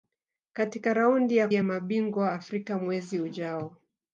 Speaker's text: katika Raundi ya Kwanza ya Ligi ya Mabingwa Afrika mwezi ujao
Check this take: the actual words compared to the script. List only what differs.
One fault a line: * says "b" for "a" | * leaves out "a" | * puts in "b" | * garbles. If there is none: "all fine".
* leaves out "Kwanza ya Ligi"